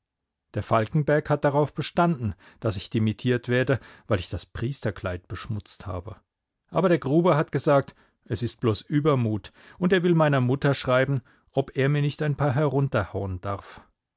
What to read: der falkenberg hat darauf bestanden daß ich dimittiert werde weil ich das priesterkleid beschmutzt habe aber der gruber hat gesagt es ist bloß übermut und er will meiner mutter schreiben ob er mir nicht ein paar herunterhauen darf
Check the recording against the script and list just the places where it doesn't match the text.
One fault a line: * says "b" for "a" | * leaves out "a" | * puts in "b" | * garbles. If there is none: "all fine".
all fine